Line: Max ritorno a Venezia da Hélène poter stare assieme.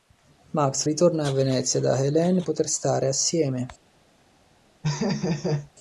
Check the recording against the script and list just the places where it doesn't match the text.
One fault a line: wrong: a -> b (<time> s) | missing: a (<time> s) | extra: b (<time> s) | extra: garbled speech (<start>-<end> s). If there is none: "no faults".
no faults